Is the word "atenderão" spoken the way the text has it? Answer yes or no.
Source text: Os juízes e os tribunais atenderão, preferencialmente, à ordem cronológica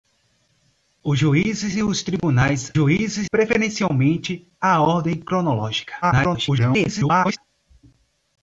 no